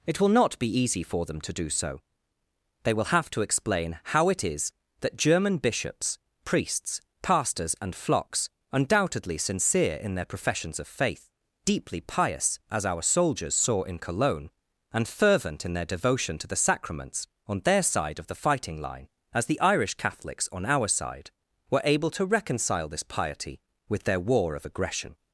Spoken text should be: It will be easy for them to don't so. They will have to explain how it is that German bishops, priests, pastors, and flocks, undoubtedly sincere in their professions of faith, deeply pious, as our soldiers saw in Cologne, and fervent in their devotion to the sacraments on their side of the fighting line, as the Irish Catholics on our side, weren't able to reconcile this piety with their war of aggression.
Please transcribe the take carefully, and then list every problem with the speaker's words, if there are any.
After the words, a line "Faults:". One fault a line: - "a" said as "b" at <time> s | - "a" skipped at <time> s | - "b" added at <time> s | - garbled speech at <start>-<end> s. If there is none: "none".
It will not be easy for them to do so. They will have to explain how it is that German bishops, priests, pastors, and flocks, undoubtedly sincere in their professions of faith, deeply pious, as our soldiers saw in Cologne, and fervent in their devotion to the sacraments on their side of the fighting line, as the Irish Catholics on our side, were able to reconcile this piety with their war of aggression.
Faults:
- "not" added at 0.3 s
- "don't" said as "do" at 1.5 s
- "weren't" said as "were" at 21.7 s